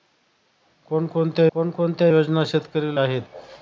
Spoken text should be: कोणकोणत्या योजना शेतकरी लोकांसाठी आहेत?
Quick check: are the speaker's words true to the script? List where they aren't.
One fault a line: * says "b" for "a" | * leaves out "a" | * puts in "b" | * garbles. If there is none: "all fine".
* puts in "कोणकोणत्या"
* leaves out "लोकांसाठी"